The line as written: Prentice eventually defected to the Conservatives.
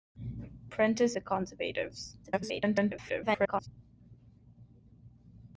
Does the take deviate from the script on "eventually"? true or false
true